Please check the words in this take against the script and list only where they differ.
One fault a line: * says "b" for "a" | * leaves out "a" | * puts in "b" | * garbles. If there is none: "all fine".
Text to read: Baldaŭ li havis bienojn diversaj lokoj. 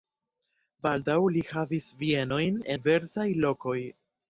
all fine